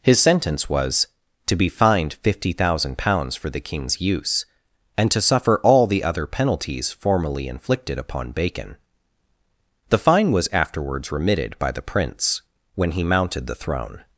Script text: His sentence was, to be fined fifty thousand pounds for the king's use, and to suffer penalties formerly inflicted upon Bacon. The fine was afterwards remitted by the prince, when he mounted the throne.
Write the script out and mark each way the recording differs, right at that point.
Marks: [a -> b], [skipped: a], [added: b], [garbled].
His sentence was, to be fined fifty thousand pounds for the king's use, and to suffer [added: all the other] penalties formerly inflicted upon Bacon. The fine was afterwards remitted by the prince, when he mounted the throne.